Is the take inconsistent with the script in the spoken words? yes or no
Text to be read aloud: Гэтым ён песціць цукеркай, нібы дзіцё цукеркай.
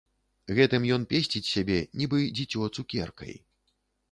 yes